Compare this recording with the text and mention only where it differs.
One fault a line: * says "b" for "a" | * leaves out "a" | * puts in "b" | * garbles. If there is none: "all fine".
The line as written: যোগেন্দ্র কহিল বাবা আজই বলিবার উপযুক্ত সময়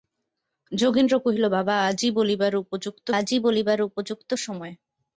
* puts in "আজই বলিবার উপযুক্ত"